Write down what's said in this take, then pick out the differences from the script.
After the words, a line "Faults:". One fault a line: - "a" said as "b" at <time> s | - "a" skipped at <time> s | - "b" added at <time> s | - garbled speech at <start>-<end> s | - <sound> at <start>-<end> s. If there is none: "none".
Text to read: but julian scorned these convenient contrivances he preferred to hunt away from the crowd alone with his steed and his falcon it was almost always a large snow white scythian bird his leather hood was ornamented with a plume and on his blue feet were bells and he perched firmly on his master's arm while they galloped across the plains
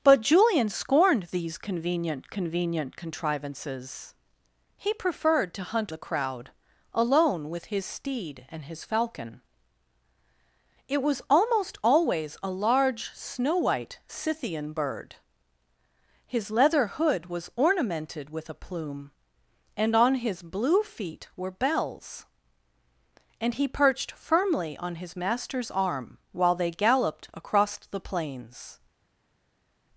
but julian scorned these convenient convenient contrivances he preferred to hunt the crowd alone with his steed and his falcon it was almost always a large snow white scythian bird his leather hood was ornamented with a plume and on his blue feet were bells and he perched firmly on his master's arm while they galloped across the plains
Faults:
- "convenient" added at 2.3 s
- "away from" skipped at 5.9 s